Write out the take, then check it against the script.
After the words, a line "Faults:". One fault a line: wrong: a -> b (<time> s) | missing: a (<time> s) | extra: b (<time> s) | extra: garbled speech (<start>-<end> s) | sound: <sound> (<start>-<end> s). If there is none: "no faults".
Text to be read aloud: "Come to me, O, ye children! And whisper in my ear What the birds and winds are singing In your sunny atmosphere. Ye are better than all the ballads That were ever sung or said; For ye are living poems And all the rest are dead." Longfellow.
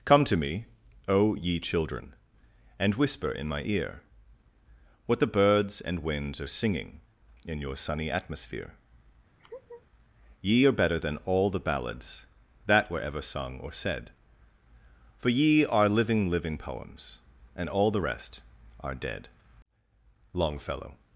"Come to me, O, ye children! And whisper in my ear What the birds and winds are singing In your sunny atmosphere. Ye are better than all the ballads That were ever sung or said; For ye are living living poems And all the rest are dead." Longfellow.
Faults:
sound: laugh (9.4-9.9 s)
extra: living (16.3 s)